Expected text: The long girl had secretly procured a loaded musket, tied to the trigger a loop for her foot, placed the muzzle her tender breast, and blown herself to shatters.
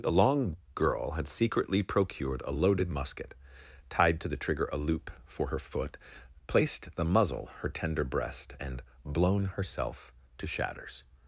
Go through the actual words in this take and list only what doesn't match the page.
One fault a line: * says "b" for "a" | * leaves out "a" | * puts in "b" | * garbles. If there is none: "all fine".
all fine